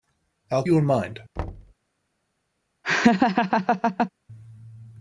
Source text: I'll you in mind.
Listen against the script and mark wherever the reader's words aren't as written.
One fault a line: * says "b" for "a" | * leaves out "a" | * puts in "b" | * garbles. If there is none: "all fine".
all fine